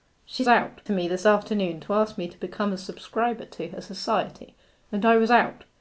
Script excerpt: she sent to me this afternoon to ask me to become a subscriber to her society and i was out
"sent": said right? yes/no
no